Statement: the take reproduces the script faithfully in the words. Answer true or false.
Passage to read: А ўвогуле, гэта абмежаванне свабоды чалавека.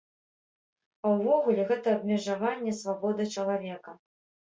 true